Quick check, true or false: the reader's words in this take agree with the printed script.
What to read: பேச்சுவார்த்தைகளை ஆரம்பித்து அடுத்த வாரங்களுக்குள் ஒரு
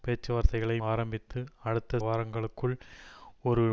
true